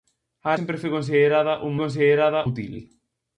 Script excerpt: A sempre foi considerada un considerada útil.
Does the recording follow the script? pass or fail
pass